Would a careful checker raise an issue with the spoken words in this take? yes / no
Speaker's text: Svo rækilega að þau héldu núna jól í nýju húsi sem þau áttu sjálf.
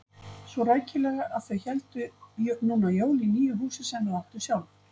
no